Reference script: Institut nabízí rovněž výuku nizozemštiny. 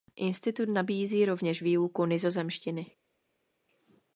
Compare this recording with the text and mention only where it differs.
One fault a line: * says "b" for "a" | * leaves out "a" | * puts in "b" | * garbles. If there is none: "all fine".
all fine